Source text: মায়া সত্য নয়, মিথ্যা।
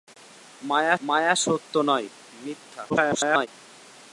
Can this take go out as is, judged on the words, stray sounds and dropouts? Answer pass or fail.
fail